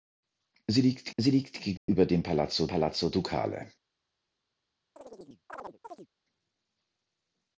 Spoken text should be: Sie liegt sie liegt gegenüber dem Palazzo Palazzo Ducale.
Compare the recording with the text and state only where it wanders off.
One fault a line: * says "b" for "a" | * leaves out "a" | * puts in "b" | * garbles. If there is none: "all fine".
all fine